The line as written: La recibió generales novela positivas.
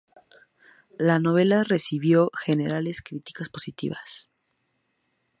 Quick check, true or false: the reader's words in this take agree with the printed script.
false